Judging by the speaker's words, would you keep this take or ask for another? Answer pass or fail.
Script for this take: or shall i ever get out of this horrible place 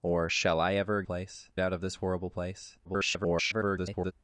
fail